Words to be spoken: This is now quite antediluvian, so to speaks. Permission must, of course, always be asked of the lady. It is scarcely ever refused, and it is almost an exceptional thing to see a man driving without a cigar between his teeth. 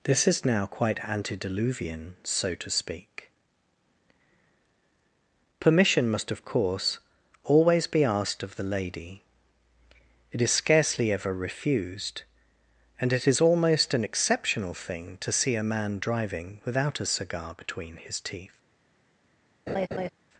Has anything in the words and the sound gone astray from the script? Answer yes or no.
yes